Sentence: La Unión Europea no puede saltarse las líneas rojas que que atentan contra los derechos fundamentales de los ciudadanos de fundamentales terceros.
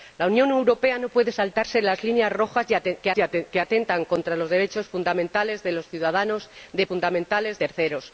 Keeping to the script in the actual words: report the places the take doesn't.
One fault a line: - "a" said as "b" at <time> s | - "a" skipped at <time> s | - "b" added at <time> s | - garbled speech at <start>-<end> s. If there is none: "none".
none